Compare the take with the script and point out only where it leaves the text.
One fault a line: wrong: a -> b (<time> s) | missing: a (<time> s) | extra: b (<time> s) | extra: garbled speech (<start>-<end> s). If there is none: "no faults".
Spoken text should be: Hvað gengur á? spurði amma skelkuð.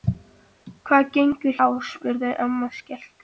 no faults